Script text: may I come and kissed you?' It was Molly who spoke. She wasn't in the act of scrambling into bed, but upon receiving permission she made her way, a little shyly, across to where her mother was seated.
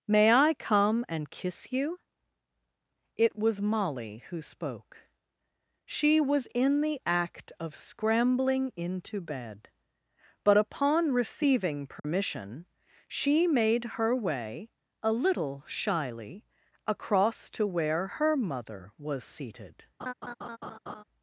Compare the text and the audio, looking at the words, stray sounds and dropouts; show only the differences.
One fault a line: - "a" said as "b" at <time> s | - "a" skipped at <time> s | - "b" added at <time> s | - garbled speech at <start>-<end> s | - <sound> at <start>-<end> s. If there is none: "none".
- "kissed" said as "kiss" at 1.3 s
- "wasn't" said as "was" at 6.2 s
- dropout at 12.0-12.0 s
- laugh at 20.0-21.0 s